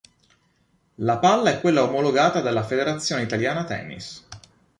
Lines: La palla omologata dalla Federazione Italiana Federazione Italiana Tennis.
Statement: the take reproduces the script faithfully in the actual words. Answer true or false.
false